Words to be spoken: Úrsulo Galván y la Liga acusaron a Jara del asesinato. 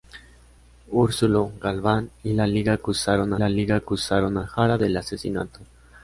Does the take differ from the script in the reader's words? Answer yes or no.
yes